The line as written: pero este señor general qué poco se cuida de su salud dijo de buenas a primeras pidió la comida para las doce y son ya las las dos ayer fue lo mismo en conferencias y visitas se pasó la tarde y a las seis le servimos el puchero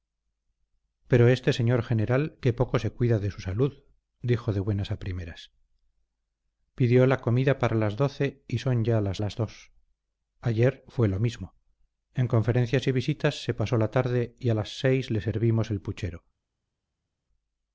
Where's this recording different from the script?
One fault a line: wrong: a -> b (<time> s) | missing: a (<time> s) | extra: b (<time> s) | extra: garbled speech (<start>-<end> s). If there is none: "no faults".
no faults